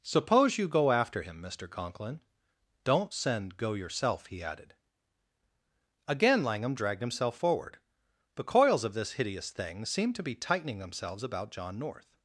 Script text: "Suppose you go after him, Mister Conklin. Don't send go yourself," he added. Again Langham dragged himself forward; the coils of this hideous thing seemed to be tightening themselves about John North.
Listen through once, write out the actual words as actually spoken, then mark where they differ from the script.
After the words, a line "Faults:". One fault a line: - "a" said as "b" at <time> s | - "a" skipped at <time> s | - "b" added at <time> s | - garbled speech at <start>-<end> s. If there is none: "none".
"Suppose you go after him, Mister Conklin. Don't send go yourself," he added. Again Langham dragged himself forward; the coils of this hideous thing seemed to be tightening themselves about John North.
Faults:
none